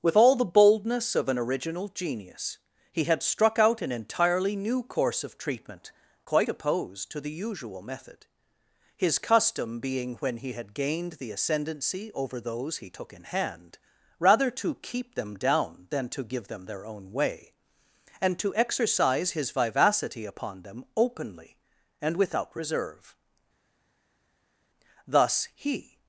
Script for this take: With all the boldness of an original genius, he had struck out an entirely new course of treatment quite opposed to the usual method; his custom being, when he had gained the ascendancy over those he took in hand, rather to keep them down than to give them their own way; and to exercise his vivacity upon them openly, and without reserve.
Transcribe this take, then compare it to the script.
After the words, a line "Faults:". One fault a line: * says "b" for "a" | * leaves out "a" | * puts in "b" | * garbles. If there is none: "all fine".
With all the boldness of an original genius, he had struck out an entirely new course of treatment quite opposed to the usual method; his custom being, when he had gained the ascendancy over those he took in hand, rather to keep them down than to give them their own way; and to exercise his vivacity upon them openly, and without reserve. Thus, he
Faults:
* puts in "Thus he"